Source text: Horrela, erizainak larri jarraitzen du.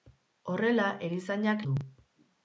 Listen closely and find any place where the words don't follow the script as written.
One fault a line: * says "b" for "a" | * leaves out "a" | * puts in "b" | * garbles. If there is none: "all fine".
* leaves out "larri jarraitzen"